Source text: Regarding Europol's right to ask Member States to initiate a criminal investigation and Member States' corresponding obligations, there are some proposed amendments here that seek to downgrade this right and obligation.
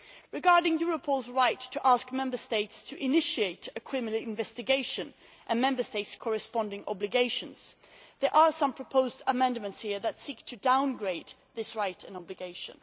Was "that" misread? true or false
false